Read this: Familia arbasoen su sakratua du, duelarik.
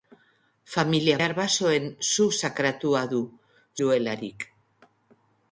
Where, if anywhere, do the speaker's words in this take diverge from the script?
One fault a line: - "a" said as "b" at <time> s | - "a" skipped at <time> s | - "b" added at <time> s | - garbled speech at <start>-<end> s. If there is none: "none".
none